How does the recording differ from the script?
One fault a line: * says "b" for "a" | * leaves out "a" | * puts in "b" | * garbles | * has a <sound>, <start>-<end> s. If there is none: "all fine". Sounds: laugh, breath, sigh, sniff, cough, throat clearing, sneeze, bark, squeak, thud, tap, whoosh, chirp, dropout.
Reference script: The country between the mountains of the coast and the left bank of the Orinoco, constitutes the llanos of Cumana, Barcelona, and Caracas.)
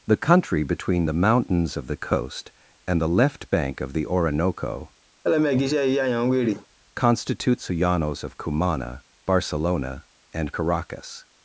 * has a laugh, 5.2-6.7 s